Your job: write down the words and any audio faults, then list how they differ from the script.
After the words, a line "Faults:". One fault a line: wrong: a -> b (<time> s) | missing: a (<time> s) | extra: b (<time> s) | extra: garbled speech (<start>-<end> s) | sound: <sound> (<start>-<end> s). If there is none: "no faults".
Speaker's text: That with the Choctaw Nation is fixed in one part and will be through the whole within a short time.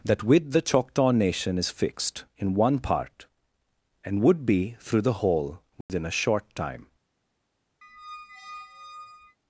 That with the Choctaw Nation is fixed in one part and would be through the whole within a short time.
Faults:
wrong: will -> would (4.2 s)
sound: dropout (5.8-5.9 s)
sound: squeak (7.8-9.4 s)